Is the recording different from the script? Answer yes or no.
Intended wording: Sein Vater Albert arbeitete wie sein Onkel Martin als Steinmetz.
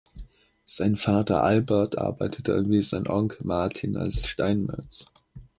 no